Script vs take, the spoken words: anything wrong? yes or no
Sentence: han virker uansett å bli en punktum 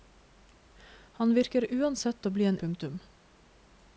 no